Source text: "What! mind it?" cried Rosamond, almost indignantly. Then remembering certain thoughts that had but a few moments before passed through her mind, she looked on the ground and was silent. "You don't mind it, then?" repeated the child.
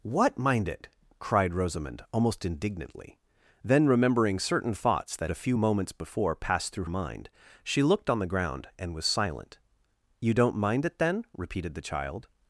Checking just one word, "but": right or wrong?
wrong